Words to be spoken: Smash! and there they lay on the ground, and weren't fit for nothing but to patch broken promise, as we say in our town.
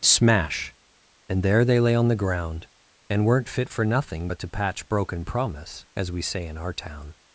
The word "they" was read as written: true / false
true